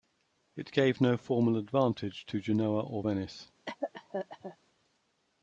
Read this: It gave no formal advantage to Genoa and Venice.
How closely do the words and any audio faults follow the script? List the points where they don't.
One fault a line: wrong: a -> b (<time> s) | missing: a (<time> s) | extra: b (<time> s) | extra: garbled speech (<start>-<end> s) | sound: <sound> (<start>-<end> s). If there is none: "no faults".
wrong: and -> or (2.8 s)
sound: cough (3.7-4.6 s)